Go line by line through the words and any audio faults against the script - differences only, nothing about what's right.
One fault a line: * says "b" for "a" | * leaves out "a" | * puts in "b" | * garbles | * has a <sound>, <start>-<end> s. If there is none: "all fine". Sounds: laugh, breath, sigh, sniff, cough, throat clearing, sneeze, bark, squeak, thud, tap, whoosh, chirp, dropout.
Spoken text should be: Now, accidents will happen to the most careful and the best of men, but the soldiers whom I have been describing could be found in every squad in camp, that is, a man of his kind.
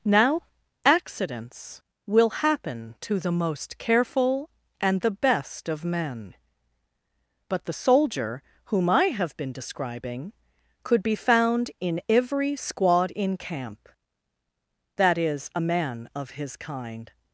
* says "soldier" for "soldiers"